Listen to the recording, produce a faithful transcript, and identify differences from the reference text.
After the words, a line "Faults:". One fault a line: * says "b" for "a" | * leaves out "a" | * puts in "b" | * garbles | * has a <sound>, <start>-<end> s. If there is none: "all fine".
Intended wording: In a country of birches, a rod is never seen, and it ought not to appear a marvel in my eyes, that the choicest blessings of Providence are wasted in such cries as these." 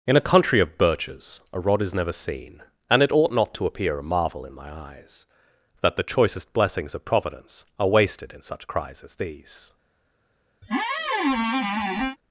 In a country of birches, a rod is never seen, and it ought not to appear a marvel in my eyes, that the choicest blessings of Providence are wasted in such cries as these."
Faults:
* has a squeak, 10.6-12.2 s